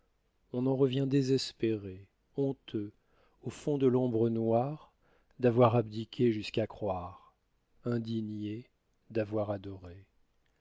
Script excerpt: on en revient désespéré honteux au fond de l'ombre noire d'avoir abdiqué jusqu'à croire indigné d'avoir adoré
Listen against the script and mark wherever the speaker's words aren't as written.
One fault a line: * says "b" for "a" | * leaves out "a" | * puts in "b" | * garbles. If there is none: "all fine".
all fine